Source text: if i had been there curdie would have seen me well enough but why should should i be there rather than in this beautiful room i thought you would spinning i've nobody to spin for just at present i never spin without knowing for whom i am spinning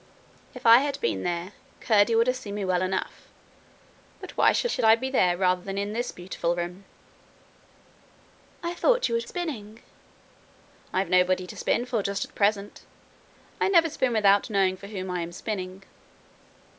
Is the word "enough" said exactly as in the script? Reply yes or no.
yes